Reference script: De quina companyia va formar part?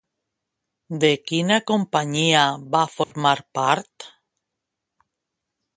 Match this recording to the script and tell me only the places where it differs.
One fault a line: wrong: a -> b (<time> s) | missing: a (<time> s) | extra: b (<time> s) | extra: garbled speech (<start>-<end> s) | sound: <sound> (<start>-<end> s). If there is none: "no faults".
sound: dropout (3.0-3.1 s)